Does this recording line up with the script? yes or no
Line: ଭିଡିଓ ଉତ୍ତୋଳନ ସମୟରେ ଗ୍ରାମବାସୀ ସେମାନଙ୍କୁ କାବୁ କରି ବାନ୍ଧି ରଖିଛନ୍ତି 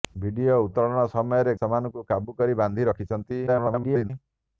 no